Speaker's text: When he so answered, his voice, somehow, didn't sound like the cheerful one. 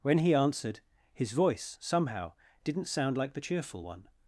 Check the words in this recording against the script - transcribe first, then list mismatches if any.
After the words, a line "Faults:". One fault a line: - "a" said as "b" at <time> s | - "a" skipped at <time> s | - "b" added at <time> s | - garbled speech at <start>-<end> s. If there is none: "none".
When he answered, his voice, somehow, didn't sound like the cheerful one.
Faults:
- "so" skipped at 0.3 s